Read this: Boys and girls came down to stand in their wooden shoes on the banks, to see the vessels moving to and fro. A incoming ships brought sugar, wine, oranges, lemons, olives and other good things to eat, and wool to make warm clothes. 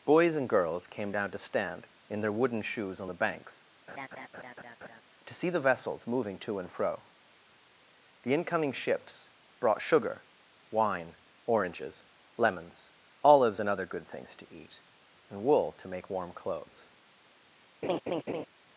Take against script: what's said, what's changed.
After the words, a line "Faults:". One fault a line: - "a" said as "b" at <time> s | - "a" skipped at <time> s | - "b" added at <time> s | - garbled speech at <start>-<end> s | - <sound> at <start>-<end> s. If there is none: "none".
Boys and girls came down to stand in their wooden shoes on the banks, to see the vessels moving to and fro. The incoming ships brought sugar, wine, oranges, lemons, olives and other good things to eat, and wool to make warm clothes.
Faults:
- laugh at 3.9-5.0 s
- "A" said as "The" at 8.2 s
- laugh at 17.8-18.5 s